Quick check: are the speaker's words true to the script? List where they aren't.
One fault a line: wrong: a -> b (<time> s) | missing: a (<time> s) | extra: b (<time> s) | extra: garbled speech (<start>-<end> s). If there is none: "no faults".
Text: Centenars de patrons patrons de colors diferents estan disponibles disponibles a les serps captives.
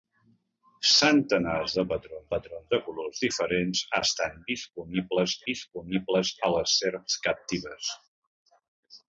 no faults